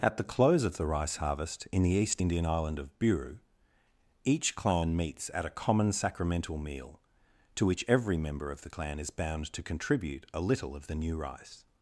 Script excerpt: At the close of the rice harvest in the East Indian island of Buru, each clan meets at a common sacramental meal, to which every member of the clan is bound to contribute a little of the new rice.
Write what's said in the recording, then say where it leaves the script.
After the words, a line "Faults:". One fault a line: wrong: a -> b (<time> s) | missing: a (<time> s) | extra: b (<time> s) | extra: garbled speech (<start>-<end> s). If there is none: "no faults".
At the close of the rice harvest in the East Indian island of Buru, each clan meets at a common sacramental meal, to which every member of the clan is bound to contribute a little of the new rice.
Faults:
no faults